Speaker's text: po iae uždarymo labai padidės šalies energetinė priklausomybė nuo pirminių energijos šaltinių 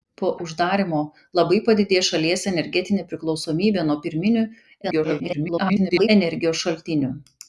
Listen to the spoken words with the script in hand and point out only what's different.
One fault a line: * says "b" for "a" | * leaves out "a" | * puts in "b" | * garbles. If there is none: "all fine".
* leaves out "iae"
* garbles